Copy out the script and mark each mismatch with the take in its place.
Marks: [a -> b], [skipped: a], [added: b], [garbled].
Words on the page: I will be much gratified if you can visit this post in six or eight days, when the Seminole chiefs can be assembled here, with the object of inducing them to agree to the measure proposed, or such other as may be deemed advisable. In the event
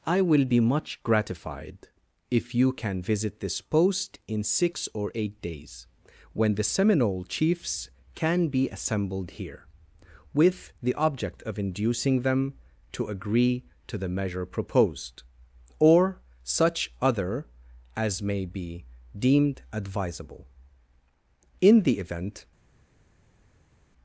I will be much gratified if you can visit this post in six or eight days, when the Seminole chiefs can be assembled here, with the object of inducing them to agree to the measure proposed, or such other as may be deemed advisable. In the event